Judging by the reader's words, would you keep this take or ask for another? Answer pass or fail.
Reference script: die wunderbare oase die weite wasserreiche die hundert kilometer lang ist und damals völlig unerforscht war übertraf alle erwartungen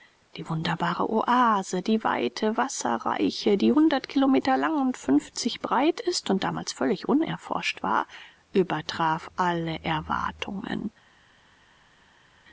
fail